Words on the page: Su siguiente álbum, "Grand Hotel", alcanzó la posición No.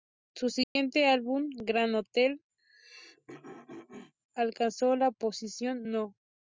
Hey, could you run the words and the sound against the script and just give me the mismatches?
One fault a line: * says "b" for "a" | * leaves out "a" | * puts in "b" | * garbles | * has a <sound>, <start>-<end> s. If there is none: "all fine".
* has a dropout, 0.6-0.8 s
* has a throat clearing, 2.6-4.1 s